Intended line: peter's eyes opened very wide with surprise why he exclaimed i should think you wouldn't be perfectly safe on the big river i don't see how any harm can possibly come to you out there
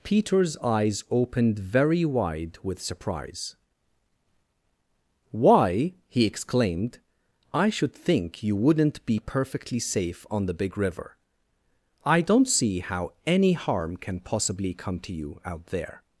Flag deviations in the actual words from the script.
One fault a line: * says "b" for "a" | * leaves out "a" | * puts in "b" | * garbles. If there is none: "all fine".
all fine